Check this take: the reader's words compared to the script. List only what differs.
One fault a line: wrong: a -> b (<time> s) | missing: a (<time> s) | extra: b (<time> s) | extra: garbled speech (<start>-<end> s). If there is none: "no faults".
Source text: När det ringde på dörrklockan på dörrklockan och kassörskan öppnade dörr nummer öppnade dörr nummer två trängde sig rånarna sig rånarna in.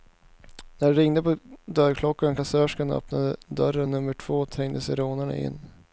missing: på dörrklockan (2.3 s)
missing: öppnade dörr nummer (4.1 s)
missing: sig rånarna (5.4 s)